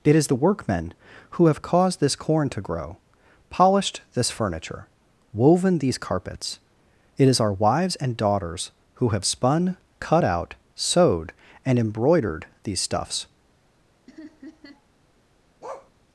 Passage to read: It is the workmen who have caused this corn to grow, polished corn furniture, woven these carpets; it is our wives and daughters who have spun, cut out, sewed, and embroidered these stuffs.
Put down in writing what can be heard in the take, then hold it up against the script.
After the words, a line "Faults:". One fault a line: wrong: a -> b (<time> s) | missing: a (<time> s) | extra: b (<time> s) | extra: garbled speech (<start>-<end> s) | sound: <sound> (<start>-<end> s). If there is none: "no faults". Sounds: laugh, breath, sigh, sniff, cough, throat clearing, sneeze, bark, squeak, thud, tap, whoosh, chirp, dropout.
It is the workmen who have caused this corn to grow, polished this furniture, woven these carpets; it is our wives and daughters who have spun, cut out, sewed, and embroidered these stuffs.
Faults:
wrong: corn -> this (4.2 s)
sound: laugh (14.1-14.9 s)
sound: bark (15.6-15.9 s)